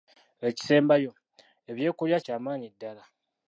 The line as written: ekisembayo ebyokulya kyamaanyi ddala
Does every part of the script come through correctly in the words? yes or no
yes